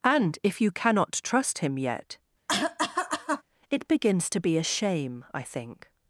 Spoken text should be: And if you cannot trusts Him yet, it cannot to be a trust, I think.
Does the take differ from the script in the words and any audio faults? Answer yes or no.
yes